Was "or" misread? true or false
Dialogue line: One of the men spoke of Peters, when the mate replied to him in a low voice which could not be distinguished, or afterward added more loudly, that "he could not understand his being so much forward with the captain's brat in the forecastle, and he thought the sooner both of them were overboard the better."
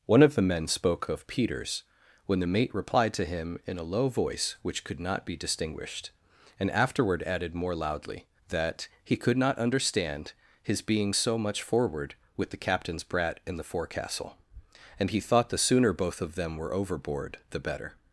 true